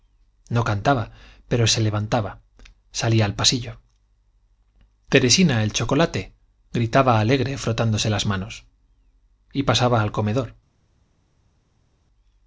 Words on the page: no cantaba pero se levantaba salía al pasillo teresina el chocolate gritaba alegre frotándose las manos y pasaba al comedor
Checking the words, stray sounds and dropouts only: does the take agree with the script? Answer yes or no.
yes